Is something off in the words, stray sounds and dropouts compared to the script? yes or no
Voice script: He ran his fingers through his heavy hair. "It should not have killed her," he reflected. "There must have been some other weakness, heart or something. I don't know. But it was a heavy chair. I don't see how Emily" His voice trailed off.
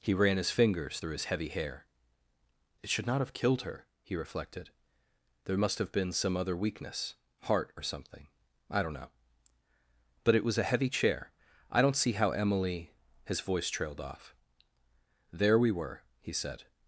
yes